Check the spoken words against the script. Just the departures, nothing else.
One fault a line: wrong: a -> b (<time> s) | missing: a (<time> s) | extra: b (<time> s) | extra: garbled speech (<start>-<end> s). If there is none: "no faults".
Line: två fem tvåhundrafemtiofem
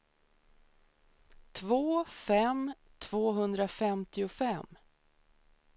no faults